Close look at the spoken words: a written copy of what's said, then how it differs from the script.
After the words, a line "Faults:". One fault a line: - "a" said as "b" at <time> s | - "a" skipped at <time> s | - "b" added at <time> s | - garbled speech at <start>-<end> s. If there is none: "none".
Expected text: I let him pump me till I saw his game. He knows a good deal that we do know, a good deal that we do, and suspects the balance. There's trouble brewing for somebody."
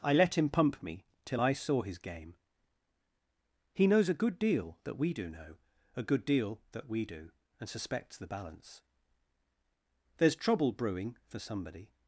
I let him pump me till I saw his game. He knows a good deal that we do know, a good deal that we do, and suspects the balance. There's trouble brewing for somebody."
Faults:
none